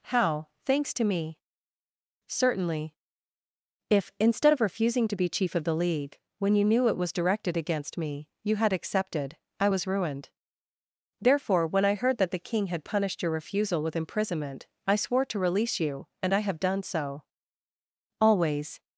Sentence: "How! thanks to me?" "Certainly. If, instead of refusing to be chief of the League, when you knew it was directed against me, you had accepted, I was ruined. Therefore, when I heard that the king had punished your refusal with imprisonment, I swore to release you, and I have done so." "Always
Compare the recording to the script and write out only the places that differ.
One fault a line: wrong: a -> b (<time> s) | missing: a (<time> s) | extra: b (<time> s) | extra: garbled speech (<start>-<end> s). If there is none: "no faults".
no faults